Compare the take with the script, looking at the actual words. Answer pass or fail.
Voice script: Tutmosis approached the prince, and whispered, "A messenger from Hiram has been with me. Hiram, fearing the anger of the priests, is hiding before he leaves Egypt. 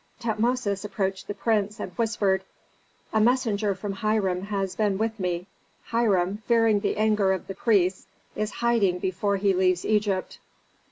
pass